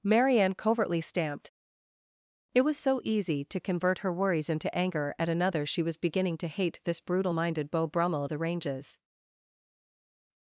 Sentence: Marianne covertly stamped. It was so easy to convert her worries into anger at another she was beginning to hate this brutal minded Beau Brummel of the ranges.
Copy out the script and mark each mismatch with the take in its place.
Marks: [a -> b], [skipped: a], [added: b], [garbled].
Marianne covertly stamped. It was so easy to convert her worries into anger at another she was beginning to hate this brutal minded Beau Brummel of the ranges.